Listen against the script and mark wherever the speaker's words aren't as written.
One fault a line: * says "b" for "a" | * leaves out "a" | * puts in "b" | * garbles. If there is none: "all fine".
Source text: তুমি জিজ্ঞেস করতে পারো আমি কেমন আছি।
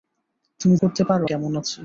* leaves out "জিজ্ঞেস"
* leaves out "আমি"